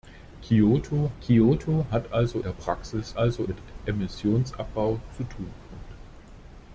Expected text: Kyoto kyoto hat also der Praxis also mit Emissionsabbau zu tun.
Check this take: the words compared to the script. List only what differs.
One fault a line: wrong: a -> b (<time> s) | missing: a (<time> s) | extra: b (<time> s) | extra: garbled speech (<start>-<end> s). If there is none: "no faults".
no faults